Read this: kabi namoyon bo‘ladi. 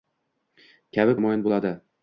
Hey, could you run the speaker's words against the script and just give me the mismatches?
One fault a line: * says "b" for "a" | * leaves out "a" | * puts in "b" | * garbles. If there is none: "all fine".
all fine